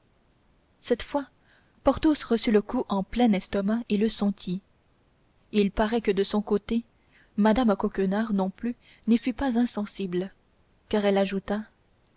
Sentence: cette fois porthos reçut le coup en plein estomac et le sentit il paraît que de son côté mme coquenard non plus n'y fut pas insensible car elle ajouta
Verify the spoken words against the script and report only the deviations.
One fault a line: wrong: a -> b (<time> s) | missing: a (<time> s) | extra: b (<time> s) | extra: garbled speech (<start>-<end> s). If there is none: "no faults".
no faults